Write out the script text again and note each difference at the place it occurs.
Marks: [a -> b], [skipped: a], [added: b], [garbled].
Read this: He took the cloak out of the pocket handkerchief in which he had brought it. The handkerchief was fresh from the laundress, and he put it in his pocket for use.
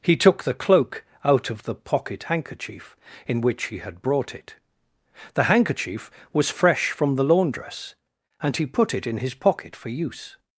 He took the cloak out of the pocket handkerchief in which he had brought it. The handkerchief was fresh from the laundress, and he put it in his pocket for use.